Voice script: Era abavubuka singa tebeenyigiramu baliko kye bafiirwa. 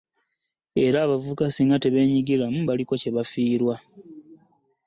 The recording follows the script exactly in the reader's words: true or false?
true